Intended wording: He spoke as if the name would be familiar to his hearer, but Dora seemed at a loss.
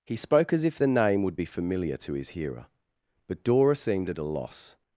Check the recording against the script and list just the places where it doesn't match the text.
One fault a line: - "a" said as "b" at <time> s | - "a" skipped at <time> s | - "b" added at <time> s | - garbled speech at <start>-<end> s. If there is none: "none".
none